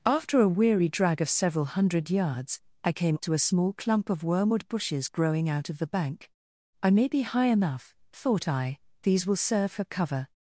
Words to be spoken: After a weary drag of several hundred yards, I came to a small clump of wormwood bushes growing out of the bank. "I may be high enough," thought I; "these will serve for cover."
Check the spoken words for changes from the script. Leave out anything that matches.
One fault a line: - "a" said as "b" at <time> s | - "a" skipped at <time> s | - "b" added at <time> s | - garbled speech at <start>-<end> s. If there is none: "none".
none